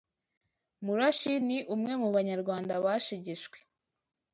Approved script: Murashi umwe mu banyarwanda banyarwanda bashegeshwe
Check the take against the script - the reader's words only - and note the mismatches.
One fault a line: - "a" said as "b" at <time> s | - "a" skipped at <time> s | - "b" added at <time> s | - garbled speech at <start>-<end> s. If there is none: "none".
- "ni" added at 1.5 s
- "banyarwanda" skipped at 2.7 s